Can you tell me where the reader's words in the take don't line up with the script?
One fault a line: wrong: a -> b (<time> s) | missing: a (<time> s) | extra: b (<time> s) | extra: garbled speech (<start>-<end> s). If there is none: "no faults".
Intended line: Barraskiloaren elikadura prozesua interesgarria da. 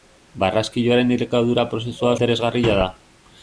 no faults